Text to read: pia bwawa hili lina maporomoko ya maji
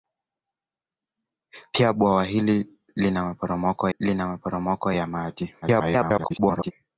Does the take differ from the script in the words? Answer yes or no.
yes